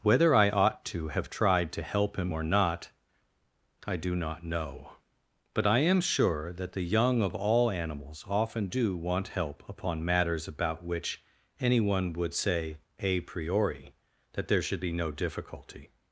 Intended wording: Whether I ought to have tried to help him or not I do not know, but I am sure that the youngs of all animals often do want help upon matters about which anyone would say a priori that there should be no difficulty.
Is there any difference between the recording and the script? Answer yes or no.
yes